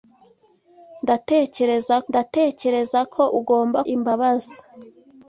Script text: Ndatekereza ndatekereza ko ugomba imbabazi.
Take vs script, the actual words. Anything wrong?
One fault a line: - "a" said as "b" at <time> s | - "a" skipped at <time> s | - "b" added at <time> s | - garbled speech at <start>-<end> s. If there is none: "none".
none